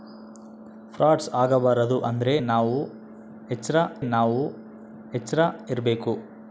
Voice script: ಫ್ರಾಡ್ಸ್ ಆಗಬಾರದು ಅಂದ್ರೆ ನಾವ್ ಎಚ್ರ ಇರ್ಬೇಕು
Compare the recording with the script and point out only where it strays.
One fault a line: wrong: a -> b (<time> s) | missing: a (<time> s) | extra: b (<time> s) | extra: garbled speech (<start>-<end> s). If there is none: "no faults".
extra: ನಾವ್ ಎಚ್ರ (4.1 s)